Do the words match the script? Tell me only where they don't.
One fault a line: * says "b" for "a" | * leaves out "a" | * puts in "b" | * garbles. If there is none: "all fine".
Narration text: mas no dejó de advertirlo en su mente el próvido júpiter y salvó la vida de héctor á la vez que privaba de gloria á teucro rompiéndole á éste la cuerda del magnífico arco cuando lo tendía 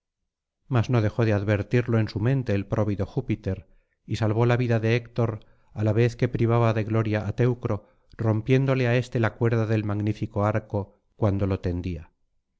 all fine